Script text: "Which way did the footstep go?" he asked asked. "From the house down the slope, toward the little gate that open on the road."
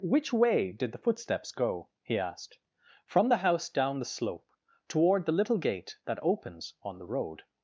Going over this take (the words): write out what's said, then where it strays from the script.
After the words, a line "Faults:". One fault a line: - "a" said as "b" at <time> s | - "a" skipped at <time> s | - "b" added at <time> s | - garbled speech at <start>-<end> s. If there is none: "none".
"Which way did the footsteps go?" he asked. "From the house down the slope, toward the little gate that opens on the road."
Faults:
- "footstep" said as "footsteps" at 1.0 s
- "asked" skipped at 2.6 s
- "open" said as "opens" at 6.2 s